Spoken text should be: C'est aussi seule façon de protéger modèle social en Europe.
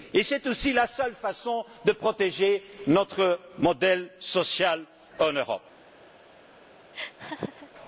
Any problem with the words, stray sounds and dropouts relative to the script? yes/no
yes